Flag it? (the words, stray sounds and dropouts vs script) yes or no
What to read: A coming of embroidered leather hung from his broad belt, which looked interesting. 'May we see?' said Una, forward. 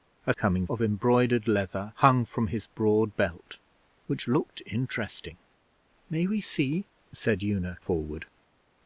no